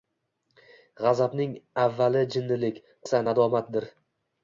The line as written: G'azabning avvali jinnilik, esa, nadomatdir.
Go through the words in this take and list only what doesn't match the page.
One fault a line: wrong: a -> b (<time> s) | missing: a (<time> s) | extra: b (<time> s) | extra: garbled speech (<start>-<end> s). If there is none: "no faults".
no faults